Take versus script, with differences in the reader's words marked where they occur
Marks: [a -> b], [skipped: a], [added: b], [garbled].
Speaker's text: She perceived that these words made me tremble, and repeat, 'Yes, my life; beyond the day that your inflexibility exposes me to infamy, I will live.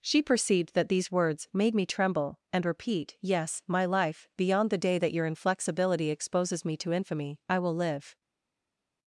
She perceived that these words made me tremble, and repeat, 'Yes, my life; beyond the day that your inflexibility exposes me to infamy, I will live.